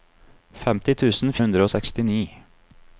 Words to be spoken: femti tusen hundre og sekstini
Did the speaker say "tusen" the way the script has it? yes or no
yes